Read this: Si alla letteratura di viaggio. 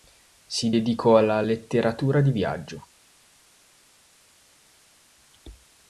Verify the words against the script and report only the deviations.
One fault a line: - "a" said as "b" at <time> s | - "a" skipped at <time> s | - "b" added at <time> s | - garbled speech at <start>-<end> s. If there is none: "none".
- "dedicò" added at 0.7 s